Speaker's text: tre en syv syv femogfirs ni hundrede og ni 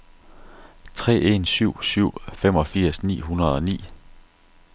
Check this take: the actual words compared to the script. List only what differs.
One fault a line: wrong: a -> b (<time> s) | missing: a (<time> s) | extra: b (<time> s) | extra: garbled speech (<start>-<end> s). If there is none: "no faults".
no faults